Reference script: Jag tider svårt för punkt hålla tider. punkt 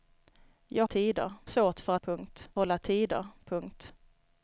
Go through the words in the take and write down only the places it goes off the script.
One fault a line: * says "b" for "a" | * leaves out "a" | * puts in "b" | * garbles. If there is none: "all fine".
all fine